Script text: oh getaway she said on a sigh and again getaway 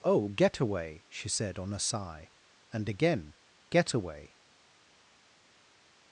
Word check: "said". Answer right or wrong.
right